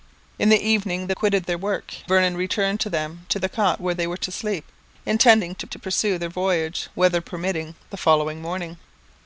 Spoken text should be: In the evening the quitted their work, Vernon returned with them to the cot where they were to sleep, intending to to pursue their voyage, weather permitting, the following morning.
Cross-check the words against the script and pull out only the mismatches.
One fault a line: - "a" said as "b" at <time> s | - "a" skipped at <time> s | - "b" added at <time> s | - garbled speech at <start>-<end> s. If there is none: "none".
none